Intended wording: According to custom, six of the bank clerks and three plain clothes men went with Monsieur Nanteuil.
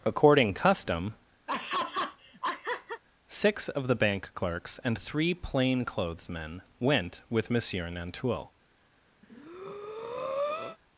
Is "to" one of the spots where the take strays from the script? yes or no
yes